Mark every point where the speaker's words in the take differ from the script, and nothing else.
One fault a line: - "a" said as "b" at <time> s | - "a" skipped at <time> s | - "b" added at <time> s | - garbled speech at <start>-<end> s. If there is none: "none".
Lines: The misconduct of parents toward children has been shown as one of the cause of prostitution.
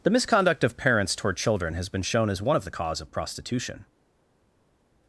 none